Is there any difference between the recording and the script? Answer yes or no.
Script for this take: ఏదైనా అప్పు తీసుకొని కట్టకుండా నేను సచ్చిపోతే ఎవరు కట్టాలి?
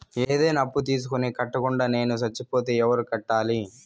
no